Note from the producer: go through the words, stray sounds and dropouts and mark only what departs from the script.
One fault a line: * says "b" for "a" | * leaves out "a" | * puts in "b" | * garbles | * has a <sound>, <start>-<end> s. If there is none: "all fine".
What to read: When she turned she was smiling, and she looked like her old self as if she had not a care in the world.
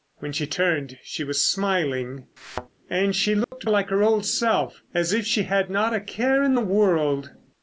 * has a thud, 2.4-2.7 s
* has a dropout, 3.4-3.5 s